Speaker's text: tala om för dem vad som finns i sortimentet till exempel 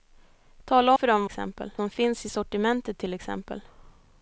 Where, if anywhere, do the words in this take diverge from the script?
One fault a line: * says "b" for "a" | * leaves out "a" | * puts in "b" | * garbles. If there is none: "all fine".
* leaves out "om"
* says "exempel" for "vad"